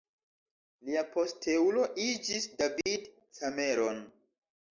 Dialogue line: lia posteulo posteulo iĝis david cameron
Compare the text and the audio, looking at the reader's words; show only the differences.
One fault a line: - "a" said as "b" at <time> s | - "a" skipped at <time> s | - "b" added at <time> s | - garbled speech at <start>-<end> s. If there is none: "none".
- "posteulo" skipped at 1.8 s